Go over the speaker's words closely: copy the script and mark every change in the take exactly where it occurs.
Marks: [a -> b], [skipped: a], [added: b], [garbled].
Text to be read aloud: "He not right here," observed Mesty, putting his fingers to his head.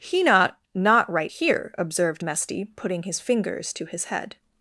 "He not [added: not] right here," observed Mesty, putting his fingers to his head.